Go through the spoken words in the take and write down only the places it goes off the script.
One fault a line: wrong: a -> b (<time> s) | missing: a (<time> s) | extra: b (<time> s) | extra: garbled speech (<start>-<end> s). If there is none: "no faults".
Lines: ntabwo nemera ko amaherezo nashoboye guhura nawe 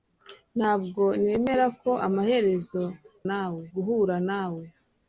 wrong: nashoboye -> nawe (3.3 s)